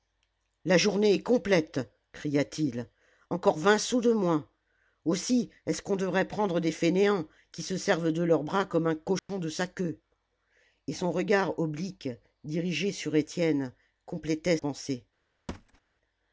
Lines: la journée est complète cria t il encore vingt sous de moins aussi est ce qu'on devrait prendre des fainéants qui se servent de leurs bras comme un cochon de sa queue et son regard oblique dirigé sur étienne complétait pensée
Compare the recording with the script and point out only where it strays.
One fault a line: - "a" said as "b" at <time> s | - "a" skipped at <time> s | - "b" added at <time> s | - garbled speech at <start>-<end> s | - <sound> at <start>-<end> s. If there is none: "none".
- dropout at 9.2-9.3 s
- thud at 15.5-15.8 s